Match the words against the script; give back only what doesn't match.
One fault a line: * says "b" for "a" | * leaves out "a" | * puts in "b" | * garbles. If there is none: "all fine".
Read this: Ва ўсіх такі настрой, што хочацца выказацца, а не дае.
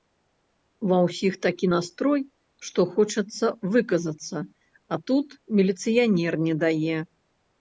* puts in "тут міліцыянер"